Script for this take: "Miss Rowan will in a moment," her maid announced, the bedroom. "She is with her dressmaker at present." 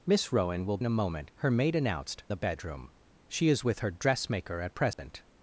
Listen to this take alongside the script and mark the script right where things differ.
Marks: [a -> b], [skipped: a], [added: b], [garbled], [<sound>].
"Miss Rowan will in a moment," her maid announced, the bedroom. "She is with her dressmaker at present." [dropout]